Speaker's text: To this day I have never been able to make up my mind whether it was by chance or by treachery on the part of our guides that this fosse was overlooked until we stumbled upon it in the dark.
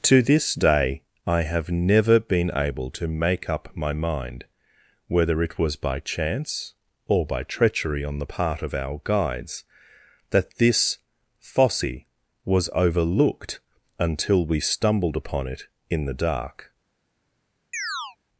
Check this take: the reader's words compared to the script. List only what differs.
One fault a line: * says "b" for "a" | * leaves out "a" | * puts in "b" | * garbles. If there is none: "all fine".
all fine